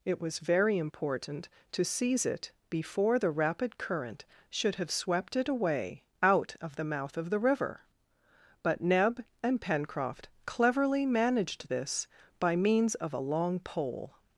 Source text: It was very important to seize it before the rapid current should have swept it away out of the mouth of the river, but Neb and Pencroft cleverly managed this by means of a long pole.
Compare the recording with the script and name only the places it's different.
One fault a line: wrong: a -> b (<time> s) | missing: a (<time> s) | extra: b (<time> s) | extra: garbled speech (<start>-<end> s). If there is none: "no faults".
no faults